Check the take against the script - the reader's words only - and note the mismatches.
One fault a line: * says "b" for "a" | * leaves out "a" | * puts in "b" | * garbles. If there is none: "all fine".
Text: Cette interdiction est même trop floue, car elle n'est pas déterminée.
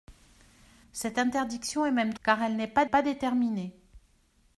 * leaves out "trop floue"
* puts in "pas"